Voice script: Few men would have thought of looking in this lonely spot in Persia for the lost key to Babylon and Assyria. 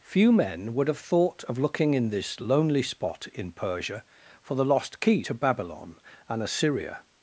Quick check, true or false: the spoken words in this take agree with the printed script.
true